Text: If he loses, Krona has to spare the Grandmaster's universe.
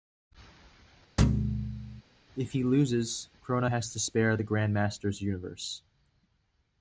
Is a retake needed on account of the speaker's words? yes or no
no